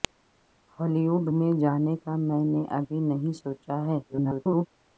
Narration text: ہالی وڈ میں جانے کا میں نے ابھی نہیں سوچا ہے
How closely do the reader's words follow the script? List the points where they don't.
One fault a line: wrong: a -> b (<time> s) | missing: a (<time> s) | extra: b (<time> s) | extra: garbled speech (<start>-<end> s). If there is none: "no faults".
extra: garbled speech (4.1-4.7 s)